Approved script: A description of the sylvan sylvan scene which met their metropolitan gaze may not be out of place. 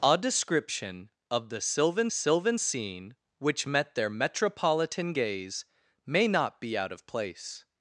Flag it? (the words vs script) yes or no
no